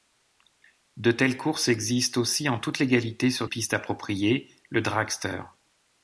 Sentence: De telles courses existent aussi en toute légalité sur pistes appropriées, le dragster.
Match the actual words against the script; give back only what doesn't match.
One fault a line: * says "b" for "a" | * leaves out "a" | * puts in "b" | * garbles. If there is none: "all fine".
all fine